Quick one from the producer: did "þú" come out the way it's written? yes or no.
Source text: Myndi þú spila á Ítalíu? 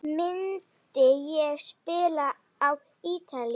no